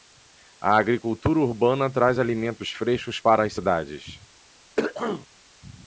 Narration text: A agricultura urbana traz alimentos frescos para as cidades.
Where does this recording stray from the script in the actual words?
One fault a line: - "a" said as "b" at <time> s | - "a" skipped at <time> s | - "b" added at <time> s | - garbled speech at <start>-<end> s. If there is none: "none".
none